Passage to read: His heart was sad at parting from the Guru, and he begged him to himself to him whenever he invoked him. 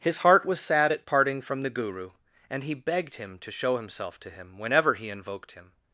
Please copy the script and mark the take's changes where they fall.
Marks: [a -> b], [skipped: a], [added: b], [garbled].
His heart was sad at parting from the Guru, and he begged him to [added: show] himself to him whenever he invoked him.